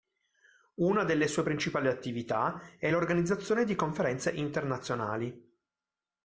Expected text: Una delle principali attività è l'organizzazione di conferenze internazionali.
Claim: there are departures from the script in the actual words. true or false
true